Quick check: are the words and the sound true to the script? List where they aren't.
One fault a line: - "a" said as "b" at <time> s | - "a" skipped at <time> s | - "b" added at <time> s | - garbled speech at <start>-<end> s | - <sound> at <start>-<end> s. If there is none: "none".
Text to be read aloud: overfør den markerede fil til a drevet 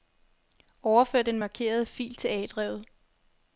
none